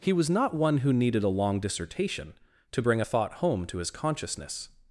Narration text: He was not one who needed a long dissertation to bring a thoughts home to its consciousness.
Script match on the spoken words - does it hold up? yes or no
no